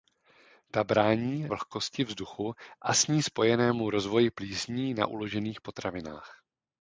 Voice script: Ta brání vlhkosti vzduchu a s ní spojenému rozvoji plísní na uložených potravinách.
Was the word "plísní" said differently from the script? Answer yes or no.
no